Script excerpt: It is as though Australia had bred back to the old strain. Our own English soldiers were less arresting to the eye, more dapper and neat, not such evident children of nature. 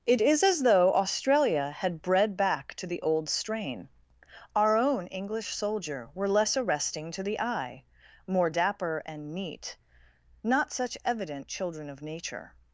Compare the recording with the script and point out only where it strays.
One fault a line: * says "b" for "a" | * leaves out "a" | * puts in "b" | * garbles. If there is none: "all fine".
* says "soldier" for "soldiers"